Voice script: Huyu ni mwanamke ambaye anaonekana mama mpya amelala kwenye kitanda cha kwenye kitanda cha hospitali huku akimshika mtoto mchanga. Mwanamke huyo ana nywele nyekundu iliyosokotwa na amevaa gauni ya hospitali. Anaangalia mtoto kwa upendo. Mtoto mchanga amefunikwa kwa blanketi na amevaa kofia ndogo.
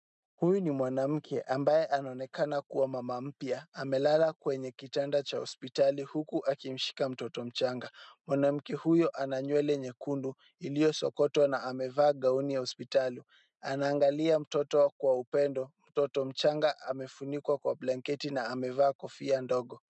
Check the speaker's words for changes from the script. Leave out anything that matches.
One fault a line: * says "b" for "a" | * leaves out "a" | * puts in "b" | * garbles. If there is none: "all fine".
* puts in "kuwa"
* leaves out "kwenye kitanda cha"